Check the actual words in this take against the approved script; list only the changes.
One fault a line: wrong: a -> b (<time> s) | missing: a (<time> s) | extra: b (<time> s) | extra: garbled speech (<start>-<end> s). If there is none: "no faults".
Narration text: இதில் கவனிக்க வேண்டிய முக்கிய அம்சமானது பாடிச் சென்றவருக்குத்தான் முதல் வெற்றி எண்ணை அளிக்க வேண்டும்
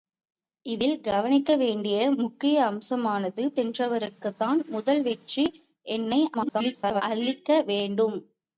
missing: பாடிச் (3.4 s)
extra: garbled speech (6.3-7.0 s)